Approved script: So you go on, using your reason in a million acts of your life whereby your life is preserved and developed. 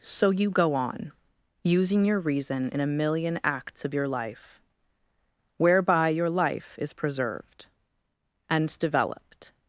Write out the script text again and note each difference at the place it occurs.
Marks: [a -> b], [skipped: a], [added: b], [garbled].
So you go on, using your reason in a million acts of your life whereby your life is preserved and developed.